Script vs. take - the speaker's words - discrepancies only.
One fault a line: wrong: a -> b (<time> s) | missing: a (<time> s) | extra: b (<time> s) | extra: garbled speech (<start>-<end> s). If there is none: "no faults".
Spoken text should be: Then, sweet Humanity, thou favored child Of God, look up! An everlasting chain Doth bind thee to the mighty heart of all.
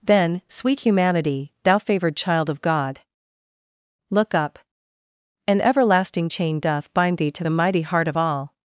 no faults